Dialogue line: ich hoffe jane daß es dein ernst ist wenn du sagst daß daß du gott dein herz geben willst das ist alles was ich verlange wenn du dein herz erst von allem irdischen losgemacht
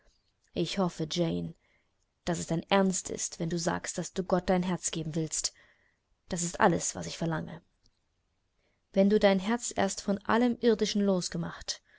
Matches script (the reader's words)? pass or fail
fail